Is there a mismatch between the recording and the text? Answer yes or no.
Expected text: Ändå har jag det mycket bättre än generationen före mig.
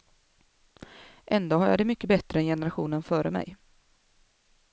no